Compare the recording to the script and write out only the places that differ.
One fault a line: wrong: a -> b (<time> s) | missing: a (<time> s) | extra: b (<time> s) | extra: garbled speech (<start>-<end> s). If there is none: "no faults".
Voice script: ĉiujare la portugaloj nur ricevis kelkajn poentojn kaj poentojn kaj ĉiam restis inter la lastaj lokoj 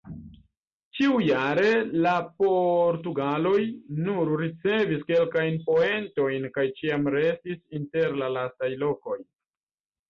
missing: poentojn kaj (6.7 s)